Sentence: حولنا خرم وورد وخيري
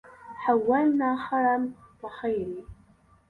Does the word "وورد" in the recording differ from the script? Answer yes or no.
yes